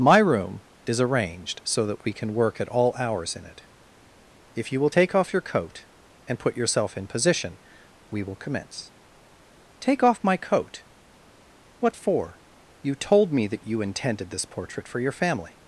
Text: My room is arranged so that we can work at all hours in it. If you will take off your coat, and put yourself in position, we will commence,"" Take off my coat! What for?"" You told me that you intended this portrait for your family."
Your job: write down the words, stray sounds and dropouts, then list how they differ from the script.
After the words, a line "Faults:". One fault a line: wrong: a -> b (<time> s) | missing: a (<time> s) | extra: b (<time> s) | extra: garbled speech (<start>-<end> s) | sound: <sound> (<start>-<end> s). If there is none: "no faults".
My room is arranged so that we can work at all hours in it. If you will take off your coat, and put yourself in position, we will commence,"" Take off my coat! What for?"" You told me that you intended this portrait for your family."
Faults:
no faults